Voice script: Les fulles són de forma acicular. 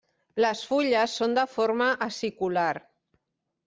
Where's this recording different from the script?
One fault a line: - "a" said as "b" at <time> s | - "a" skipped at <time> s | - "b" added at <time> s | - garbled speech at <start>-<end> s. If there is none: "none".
none